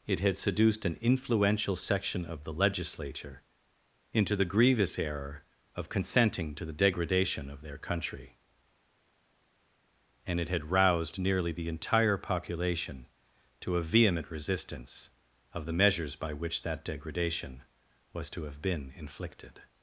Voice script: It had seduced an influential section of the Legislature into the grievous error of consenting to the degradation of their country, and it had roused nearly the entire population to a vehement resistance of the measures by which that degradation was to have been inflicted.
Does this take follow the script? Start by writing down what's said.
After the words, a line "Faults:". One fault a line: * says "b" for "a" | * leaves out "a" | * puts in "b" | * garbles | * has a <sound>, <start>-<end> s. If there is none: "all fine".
It had seduced an influential section of the Legislature into the grievous error of consenting to the degradation of their country, and it had roused nearly the entire population to a vehement resistance of the measures by which that degradation was to have been inflicted.
Faults:
all fine